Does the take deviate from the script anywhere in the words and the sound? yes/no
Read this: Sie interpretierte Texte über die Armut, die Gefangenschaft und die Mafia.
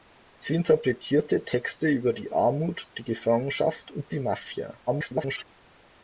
yes